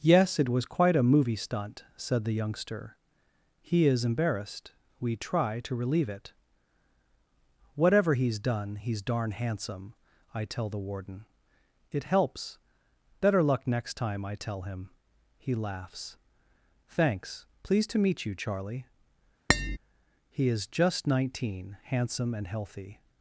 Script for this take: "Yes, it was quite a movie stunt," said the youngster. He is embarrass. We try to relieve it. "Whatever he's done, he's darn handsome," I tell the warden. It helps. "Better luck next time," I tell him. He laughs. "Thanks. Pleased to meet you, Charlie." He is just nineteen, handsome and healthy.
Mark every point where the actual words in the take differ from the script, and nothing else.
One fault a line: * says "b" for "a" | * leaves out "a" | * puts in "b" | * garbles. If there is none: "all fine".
* says "embarrassed" for "embarrass"